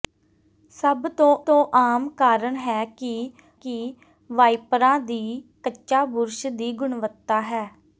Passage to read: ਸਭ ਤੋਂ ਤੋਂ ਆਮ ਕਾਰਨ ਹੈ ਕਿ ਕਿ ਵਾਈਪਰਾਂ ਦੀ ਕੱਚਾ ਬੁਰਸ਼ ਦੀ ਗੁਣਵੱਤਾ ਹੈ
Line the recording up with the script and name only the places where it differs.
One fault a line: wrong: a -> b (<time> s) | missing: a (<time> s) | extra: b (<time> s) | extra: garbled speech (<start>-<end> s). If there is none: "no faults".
no faults